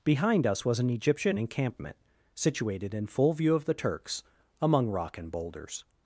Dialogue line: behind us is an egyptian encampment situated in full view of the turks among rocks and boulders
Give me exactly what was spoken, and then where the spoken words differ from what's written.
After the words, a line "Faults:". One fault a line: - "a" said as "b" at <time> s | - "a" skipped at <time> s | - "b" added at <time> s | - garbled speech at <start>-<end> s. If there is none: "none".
behind us was an egyptian encampment situated in full view of the turks among rock and boulders
Faults:
- "is" said as "was" at 0.7 s
- "rocks" said as "rock" at 4.9 s